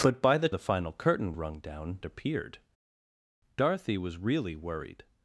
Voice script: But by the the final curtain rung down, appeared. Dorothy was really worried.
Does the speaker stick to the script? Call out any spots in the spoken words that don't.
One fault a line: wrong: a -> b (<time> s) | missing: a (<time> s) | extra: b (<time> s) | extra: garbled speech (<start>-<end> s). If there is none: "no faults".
no faults